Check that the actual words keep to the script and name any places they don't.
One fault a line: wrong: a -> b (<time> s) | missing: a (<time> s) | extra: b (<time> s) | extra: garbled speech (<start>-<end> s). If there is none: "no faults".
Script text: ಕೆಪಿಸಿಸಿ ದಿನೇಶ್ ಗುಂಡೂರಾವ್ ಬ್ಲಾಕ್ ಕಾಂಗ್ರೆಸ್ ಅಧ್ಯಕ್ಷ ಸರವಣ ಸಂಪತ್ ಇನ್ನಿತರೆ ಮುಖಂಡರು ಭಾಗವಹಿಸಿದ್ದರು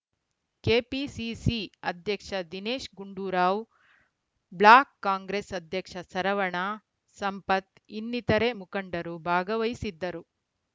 extra: ಅಧ್ಯಕ್ಷ (1.9 s)